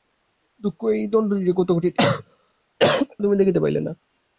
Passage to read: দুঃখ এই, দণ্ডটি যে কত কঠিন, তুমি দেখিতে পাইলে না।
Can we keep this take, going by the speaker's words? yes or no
yes